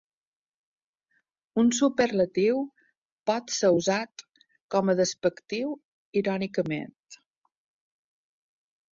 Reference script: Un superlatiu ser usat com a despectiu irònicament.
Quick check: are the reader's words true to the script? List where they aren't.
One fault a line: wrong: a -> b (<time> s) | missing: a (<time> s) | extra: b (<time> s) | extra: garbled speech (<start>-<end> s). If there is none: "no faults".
extra: pot (3.3 s)